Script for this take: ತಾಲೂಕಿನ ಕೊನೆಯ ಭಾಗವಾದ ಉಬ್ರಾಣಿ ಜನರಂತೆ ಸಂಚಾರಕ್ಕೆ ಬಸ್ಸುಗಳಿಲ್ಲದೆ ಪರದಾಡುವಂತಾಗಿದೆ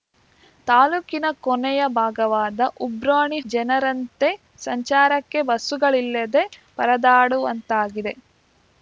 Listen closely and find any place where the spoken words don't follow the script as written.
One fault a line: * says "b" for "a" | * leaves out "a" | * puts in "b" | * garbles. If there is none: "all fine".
all fine